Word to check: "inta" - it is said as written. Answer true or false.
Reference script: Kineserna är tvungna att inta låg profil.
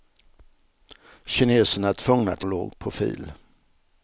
false